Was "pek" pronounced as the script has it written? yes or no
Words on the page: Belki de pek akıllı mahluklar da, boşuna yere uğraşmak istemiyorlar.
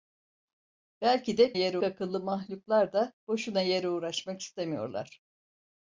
no